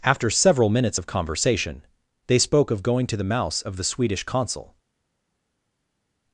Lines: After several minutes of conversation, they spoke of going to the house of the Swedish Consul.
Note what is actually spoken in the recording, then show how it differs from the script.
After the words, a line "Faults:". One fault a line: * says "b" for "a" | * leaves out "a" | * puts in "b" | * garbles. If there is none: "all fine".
After several minutes of conversation, they spoke of going to the mouse of the Swedish Consul.
Faults:
* says "mouse" for "house"